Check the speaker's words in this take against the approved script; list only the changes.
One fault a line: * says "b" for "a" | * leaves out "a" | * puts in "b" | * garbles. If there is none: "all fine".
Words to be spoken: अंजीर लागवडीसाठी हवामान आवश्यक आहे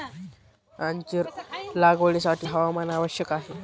all fine